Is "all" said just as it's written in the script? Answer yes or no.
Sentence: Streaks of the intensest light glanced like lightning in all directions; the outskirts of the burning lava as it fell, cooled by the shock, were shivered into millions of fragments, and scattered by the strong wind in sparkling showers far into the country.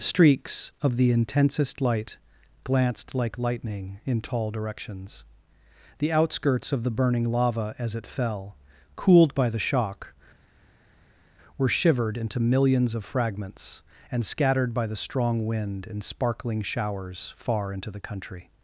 no